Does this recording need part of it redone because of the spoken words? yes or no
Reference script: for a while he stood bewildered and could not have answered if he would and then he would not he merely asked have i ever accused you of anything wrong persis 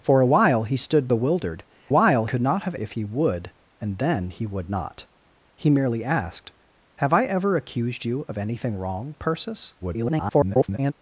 yes